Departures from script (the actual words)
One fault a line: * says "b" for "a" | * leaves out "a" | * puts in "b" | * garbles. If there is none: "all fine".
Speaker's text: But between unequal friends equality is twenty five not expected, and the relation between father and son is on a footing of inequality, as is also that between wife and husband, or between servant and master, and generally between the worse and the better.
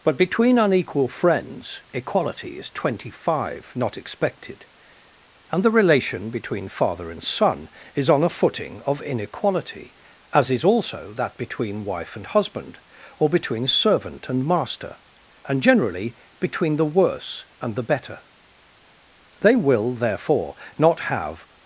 * puts in "They will therefore not have"